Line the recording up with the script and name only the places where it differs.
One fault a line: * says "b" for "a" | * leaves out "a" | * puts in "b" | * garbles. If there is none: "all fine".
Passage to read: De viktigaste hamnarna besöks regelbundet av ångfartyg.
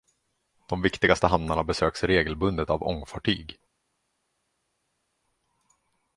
all fine